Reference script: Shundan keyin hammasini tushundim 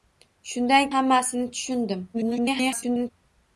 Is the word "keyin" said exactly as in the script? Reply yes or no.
no